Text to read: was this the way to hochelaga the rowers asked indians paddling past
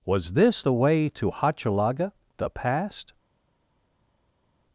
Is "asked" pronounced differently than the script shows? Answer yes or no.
yes